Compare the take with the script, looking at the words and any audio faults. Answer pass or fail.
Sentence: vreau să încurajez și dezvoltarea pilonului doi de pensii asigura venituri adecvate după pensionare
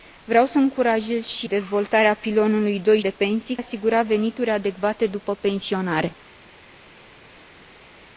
pass